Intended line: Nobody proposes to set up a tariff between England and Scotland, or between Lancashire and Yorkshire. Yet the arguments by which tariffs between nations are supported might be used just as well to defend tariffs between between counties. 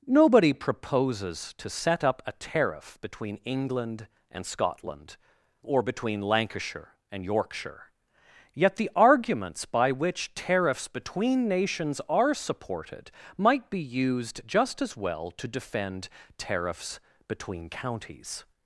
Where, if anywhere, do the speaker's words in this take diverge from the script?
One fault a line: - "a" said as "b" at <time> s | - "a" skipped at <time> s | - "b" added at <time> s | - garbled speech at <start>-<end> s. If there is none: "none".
- "between" skipped at 17.7 s